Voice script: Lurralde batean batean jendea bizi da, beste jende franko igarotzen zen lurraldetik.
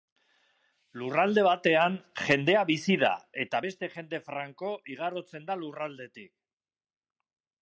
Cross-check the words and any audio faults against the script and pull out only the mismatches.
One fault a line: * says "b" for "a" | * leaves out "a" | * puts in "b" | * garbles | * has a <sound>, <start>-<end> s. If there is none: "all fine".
* leaves out "batean"
* puts in "eta"
* says "da" for "zen"